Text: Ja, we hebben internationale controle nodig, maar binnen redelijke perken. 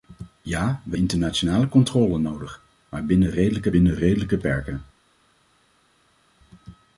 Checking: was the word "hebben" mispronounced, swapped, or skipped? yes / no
yes